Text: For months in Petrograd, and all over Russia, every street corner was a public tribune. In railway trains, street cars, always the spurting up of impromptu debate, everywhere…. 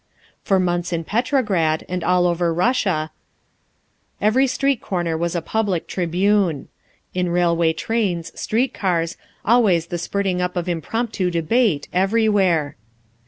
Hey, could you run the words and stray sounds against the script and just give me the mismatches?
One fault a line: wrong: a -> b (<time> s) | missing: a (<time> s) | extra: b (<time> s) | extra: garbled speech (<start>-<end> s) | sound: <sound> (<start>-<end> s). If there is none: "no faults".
no faults